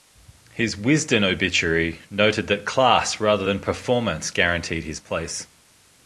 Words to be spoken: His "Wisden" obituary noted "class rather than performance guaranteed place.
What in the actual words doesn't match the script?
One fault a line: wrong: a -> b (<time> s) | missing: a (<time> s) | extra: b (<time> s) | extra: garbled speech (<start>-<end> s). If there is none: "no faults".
extra: that (2.5 s)
extra: his (4.8 s)